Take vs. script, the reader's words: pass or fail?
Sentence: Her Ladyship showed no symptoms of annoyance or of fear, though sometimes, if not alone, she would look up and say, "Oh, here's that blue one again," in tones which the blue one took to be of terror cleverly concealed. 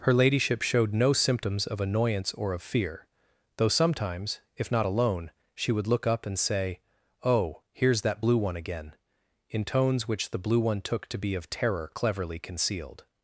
pass